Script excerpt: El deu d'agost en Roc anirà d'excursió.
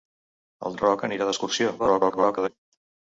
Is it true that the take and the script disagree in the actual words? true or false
true